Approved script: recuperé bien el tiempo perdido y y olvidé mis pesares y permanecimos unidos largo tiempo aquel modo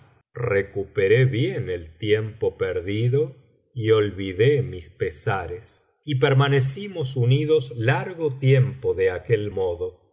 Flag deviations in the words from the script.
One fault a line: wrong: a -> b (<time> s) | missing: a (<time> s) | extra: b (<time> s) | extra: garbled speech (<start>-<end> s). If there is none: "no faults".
missing: y (3.9 s)
extra: de (8.9 s)